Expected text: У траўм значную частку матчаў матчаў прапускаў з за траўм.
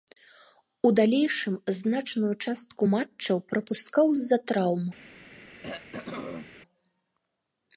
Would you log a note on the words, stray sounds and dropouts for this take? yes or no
yes